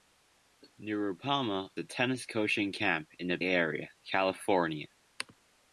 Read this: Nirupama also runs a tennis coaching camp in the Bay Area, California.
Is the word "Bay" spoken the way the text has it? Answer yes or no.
no